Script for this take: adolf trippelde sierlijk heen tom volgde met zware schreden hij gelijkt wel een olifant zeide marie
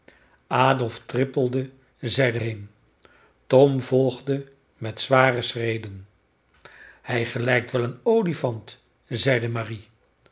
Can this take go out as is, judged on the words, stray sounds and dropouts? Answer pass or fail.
fail